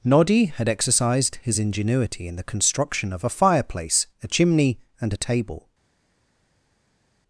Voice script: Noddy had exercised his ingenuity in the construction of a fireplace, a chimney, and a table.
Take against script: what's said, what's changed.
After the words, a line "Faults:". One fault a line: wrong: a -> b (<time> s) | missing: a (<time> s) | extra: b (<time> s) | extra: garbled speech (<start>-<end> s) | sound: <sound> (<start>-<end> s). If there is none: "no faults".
Noddy had exercised his ingenuity in the construction of a fireplace, a chimney, and a table.
Faults:
no faults